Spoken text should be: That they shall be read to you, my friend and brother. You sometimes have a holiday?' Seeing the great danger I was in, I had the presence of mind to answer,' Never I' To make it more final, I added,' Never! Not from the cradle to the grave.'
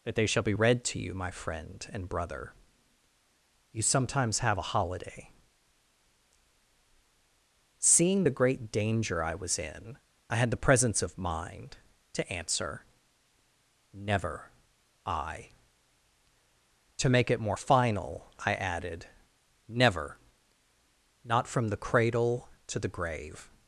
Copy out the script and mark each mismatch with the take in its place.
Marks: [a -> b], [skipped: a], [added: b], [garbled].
That they shall be read to you, my friend and brother. You sometimes have a holiday?' Seeing the great danger I was in, I had the presence of mind to answer,' Never I' To make it more final, I added,' Never! Not from the cradle to the grave.'